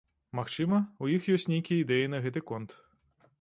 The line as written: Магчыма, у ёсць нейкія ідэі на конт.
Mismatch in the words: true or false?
true